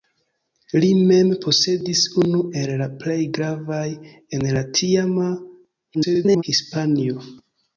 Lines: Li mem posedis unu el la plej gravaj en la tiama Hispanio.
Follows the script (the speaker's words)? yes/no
no